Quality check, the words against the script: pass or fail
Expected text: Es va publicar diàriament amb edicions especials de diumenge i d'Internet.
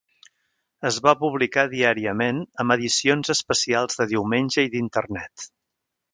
pass